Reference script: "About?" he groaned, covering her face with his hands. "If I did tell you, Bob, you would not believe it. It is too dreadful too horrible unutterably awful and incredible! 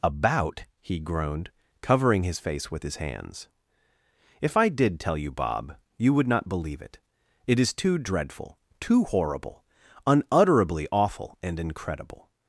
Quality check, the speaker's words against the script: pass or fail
fail